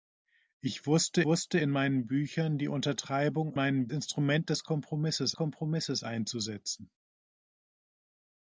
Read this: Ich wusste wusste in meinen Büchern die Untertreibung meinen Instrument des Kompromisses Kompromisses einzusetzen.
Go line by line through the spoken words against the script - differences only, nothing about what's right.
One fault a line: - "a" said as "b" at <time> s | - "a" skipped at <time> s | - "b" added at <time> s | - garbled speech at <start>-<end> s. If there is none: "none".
none